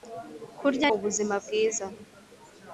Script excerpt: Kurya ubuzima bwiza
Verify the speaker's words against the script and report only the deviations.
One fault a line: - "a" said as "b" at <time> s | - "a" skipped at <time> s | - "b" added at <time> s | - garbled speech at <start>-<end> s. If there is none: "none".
none